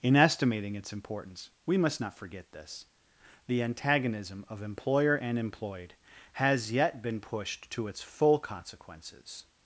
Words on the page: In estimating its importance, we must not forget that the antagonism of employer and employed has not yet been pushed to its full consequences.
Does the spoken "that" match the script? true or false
false